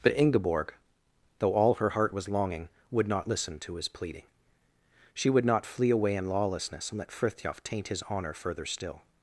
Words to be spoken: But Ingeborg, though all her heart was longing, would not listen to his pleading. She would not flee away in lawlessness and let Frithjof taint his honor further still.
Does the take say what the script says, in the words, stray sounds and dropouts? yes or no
yes